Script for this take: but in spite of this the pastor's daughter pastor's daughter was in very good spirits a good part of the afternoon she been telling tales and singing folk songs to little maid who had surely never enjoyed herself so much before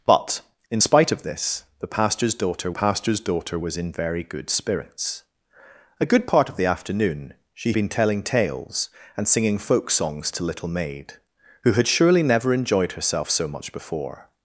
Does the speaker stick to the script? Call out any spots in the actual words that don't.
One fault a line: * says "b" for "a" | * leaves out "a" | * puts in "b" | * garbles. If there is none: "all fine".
all fine